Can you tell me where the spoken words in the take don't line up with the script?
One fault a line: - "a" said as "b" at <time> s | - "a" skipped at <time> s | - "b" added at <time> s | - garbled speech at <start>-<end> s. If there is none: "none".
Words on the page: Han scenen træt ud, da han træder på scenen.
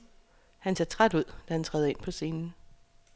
- "scenen" said as "ser" at 0.7 s
- "ind" added at 1.9 s